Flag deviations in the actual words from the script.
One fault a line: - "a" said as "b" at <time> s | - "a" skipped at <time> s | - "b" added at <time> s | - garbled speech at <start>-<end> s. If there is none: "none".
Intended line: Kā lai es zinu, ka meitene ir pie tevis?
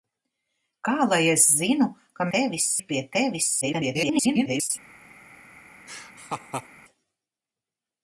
- "meitene" said as "tevis" at 2.4 s
- garbled speech at 3.6-4.7 s